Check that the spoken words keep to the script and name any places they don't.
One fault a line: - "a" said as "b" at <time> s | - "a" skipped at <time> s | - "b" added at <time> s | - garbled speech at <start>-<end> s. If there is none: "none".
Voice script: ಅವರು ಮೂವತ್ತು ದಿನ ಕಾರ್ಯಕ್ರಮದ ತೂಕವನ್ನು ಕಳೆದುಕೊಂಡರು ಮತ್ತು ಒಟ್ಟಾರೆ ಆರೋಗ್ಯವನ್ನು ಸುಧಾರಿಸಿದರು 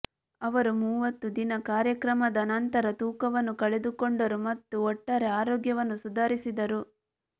- "ನಂತರ" added at 2.5 s